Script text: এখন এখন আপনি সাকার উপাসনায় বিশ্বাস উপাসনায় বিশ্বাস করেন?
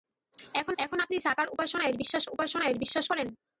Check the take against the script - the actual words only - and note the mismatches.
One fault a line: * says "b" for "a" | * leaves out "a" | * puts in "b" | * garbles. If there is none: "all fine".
all fine